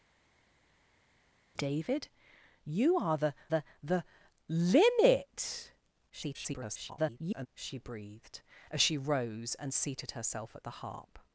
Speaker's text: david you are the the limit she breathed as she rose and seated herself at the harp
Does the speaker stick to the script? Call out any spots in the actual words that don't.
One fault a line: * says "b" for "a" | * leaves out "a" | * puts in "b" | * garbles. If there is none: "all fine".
* puts in "the"
* garbles